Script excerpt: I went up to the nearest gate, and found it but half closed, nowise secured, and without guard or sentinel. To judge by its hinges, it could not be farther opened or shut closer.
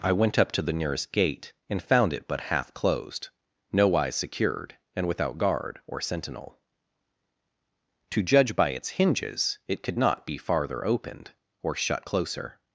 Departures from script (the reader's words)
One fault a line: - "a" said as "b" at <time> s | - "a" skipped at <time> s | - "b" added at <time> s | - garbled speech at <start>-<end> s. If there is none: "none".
none